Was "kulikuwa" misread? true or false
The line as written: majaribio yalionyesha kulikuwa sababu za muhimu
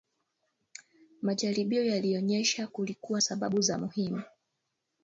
false